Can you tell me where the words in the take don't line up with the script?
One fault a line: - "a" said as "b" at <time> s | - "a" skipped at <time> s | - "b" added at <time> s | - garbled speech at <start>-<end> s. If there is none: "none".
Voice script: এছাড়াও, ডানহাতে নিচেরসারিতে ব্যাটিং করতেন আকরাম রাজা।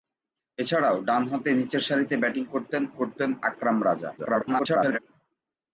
- "করতেন" added at 3.0 s
- garbled speech at 4.2-5.0 s